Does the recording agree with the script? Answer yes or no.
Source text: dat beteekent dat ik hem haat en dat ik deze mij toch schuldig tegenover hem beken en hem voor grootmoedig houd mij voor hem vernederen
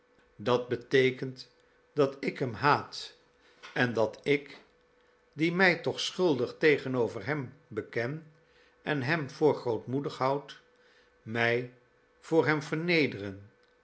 no